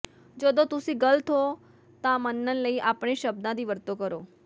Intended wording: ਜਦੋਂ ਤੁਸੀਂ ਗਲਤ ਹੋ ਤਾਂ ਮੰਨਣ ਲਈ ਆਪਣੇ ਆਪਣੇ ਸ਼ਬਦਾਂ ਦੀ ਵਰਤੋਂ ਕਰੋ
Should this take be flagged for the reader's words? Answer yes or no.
yes